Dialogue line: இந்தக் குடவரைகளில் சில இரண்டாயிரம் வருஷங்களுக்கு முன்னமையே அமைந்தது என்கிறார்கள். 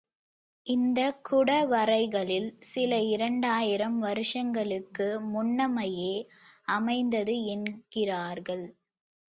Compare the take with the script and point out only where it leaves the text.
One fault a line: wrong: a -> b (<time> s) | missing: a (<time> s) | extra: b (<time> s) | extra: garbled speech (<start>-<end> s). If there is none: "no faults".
no faults